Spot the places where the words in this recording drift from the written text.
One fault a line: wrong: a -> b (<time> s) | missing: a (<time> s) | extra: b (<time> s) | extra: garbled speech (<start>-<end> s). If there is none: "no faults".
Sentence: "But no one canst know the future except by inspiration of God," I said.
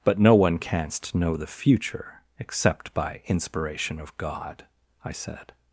no faults